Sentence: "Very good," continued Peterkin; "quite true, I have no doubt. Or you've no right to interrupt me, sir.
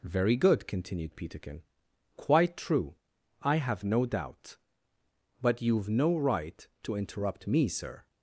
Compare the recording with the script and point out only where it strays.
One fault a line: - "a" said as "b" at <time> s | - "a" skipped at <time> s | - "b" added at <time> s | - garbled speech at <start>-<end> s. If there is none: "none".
- "Or" said as "But" at 5.4 s